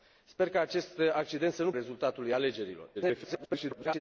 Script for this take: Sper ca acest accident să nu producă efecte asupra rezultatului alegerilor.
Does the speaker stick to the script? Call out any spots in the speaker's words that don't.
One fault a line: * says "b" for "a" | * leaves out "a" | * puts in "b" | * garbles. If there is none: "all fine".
* leaves out "producă efecte asupra"
* garbles